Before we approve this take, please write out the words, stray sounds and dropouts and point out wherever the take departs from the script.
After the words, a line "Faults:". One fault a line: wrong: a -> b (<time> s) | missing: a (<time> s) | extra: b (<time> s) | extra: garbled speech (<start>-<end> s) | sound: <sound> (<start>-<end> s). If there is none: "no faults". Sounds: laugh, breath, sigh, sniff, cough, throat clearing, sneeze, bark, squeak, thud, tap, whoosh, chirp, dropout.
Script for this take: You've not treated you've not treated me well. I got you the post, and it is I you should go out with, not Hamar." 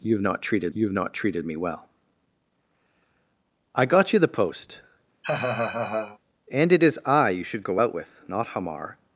You've not treated you've not treated me well. I got you the post, and it is I you should go out with, not Hamar."
Faults:
sound: laugh (5.2-6.2 s)